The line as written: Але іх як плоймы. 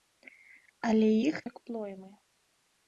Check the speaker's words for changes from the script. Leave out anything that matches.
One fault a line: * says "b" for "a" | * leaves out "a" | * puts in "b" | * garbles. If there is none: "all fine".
all fine